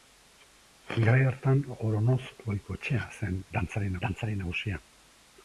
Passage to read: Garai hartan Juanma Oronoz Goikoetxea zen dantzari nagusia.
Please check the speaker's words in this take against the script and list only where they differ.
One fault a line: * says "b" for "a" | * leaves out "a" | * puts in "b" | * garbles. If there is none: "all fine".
* leaves out "Juanma"
* puts in "dantzari"